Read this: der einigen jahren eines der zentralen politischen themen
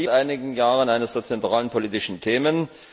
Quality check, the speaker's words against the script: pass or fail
pass